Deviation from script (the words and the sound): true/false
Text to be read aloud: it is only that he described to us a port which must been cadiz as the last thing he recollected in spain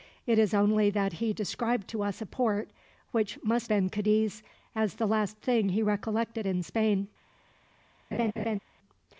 true